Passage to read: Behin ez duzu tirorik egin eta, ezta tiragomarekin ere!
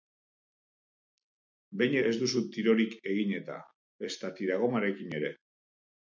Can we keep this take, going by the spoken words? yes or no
yes